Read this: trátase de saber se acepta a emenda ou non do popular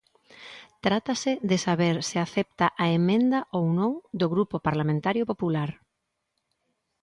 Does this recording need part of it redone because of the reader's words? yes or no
yes